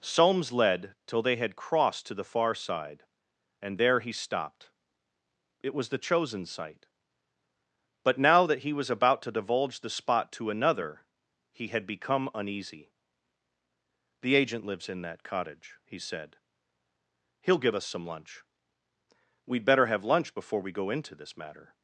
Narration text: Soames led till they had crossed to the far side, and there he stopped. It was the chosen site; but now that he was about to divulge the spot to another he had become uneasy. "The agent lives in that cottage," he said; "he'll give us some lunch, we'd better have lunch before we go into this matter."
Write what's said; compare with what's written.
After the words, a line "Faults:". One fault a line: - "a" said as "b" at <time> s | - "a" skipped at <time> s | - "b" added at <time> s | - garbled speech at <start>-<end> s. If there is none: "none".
Soames led till they had crossed to the far side, and there he stopped. It was the chosen site; but now that he was about to divulge the spot to another he had become uneasy. "The agent lives in that cottage," he said; "he'll give us some lunch, we'd better have lunch before we go into this matter."
Faults:
none